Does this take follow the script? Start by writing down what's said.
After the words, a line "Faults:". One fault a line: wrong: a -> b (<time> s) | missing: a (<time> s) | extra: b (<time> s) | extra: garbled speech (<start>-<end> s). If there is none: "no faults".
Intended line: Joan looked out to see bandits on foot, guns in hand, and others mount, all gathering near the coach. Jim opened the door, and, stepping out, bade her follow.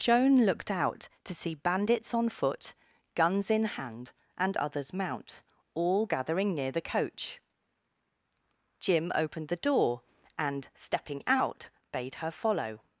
Joan looked out to see bandits on foot, guns in hand, and others mount, all gathering near the coach. Jim opened the door, and, stepping out, bade her follow.
Faults:
no faults